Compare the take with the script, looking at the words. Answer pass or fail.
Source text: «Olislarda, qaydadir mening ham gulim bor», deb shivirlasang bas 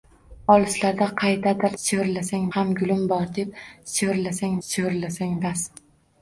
fail